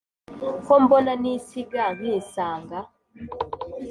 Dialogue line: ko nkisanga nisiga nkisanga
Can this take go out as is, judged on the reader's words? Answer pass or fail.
fail